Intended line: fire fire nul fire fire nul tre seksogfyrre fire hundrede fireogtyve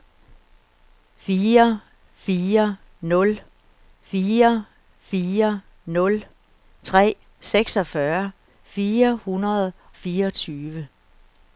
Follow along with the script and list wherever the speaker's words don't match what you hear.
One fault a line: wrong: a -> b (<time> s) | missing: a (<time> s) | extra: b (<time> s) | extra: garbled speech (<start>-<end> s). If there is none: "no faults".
no faults